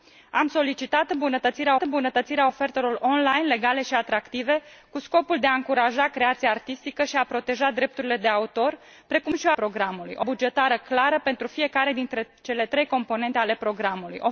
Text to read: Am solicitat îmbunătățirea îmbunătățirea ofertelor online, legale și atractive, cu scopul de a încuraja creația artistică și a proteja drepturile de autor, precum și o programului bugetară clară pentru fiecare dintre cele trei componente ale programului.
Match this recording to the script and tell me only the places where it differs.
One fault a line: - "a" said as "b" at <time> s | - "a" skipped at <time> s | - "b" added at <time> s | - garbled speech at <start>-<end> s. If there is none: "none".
none